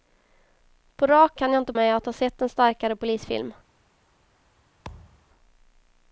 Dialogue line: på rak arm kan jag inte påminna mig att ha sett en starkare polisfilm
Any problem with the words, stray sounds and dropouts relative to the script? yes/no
yes